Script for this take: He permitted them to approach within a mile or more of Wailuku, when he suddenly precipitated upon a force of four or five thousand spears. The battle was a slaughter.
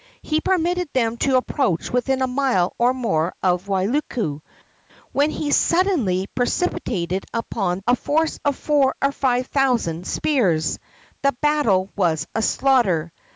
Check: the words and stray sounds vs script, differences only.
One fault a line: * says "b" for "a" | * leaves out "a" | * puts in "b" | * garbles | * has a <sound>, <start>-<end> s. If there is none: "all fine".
all fine